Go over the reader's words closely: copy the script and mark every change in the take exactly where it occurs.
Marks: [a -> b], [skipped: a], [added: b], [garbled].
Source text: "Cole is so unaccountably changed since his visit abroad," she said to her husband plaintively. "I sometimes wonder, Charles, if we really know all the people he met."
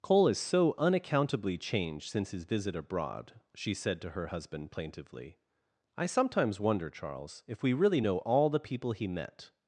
"Cole is so unaccountably changed since his visit abroad," she said to her husband plaintively. "I sometimes wonder, Charles, if we really know all the people he met."